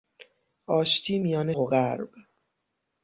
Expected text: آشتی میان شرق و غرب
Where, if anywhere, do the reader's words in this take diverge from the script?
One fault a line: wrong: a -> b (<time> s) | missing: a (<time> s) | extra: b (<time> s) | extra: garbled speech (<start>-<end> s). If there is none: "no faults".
missing: شرق (1.5 s)